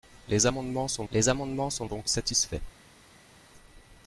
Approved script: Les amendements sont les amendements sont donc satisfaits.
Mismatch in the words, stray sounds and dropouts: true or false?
false